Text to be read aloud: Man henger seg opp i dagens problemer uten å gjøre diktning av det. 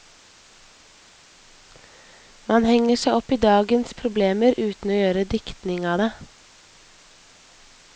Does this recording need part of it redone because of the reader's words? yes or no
no